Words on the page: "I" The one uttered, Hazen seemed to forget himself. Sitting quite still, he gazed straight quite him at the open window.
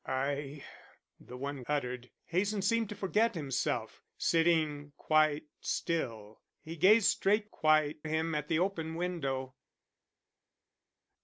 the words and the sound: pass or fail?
pass